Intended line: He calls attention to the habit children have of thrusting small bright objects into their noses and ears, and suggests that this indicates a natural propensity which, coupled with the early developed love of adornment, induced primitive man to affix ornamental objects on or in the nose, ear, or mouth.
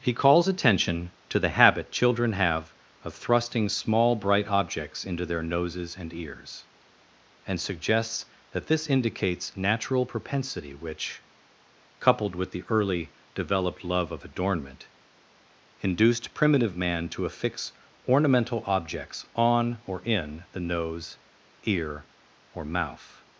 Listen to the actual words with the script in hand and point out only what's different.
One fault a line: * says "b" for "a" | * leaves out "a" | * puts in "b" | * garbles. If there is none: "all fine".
* leaves out "a"